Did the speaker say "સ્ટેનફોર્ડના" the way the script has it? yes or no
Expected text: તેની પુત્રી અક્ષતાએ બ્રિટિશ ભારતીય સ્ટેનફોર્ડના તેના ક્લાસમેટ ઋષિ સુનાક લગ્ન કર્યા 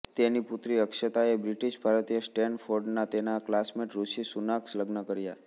yes